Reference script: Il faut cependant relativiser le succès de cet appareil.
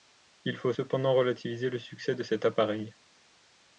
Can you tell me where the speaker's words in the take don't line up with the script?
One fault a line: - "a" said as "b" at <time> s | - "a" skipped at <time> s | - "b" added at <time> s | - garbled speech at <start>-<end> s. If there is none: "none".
none